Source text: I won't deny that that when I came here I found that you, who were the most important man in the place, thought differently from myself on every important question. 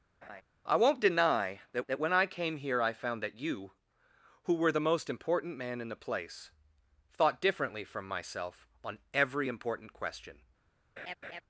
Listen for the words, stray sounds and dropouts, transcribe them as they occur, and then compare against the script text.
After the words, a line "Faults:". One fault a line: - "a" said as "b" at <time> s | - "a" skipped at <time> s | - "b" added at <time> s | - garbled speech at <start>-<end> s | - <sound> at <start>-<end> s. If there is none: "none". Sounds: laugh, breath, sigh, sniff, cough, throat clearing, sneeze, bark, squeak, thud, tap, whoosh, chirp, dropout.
I won't deny that that when I came here I found that you, who were the most important man in the place, thought differently from myself on every important question.
Faults:
- laugh at 0.2-0.4 s
- laugh at 11.0-11.4 s